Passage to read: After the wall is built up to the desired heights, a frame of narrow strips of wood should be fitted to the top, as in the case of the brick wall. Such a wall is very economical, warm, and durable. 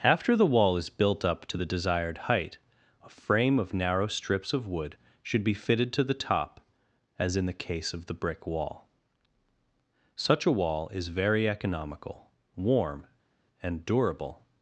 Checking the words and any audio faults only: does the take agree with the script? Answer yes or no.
no